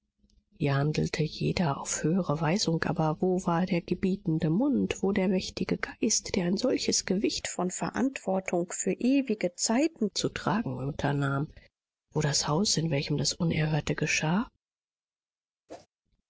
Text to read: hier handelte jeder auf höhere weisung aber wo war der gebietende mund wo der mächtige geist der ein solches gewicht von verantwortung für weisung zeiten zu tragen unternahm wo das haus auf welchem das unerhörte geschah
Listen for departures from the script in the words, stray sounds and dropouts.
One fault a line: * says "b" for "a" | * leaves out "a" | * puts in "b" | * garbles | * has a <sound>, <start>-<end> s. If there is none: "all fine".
* says "ewige" for "weisung"
* says "in" for "auf"
* has a whoosh, 15.7-15.9 s